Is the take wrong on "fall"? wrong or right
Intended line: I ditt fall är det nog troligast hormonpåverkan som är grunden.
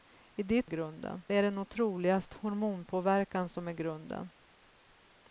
wrong